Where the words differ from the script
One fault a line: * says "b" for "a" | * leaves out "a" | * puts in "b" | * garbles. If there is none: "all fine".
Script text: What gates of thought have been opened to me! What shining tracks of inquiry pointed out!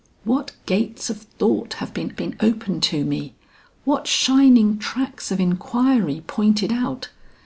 * puts in "been"